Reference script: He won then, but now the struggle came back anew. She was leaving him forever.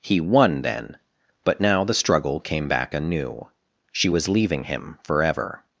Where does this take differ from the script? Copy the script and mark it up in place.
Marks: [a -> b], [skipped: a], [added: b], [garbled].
He won then, but now the struggle came back anew. She was leaving him forever.